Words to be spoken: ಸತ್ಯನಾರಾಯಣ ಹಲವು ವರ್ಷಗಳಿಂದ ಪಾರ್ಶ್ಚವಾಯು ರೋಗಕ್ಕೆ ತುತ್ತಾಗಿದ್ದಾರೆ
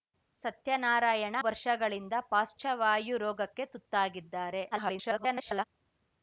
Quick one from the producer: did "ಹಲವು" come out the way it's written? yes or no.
no